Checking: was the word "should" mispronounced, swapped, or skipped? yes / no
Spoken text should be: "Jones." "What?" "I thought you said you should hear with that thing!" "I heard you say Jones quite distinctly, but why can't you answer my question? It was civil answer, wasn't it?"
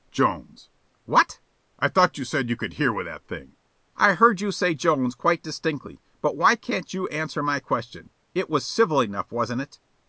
yes